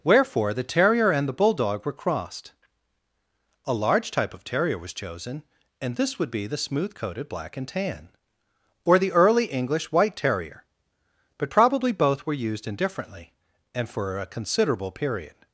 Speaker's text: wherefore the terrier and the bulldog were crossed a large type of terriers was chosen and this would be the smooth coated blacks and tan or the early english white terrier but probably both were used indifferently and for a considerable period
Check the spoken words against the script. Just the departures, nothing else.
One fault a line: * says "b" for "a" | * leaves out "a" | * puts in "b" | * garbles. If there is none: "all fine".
* says "terrier" for "terriers"
* says "black" for "blacks"